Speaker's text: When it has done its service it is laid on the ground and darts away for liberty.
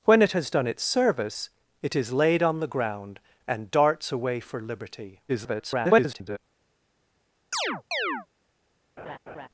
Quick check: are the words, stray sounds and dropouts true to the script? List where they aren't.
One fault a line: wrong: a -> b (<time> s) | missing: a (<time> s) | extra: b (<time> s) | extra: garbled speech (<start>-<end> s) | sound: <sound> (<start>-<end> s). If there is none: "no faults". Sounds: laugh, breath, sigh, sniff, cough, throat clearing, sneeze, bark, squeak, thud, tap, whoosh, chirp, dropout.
extra: garbled speech (5.3-6.4 s)
sound: chirp (7.5-8.3 s)
sound: laugh (9.0-9.5 s)